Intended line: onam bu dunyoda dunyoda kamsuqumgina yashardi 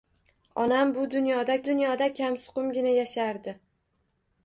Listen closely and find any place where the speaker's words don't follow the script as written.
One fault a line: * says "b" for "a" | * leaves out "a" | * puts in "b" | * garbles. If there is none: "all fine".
all fine